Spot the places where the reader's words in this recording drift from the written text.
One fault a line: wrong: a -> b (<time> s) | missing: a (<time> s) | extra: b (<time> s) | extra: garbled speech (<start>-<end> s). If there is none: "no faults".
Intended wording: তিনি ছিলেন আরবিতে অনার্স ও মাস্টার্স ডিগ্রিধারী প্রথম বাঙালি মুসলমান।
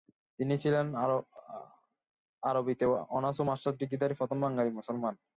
no faults